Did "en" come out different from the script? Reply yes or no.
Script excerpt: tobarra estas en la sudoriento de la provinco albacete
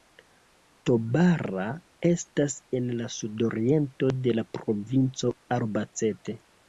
no